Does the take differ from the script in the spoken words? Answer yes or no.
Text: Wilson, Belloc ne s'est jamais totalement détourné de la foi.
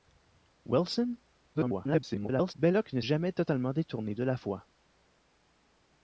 yes